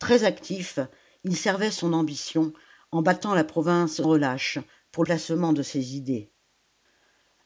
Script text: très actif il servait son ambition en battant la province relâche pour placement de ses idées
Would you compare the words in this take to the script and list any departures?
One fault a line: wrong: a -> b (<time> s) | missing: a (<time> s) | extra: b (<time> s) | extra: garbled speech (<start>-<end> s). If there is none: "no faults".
no faults